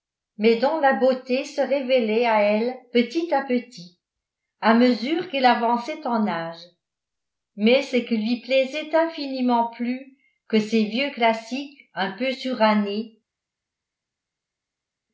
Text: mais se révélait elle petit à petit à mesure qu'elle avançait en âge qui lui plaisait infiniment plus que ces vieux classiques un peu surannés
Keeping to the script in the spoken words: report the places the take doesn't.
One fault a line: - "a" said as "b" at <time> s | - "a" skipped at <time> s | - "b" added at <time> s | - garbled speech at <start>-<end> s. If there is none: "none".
- "dont la beauté" added at 0.6 s
- "à" added at 2.2 s
- "mais ce" added at 7.6 s